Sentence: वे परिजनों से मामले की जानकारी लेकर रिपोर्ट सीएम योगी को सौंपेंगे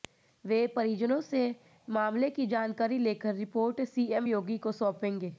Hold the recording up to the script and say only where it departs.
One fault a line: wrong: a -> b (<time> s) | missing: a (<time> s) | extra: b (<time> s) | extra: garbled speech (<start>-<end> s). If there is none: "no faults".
no faults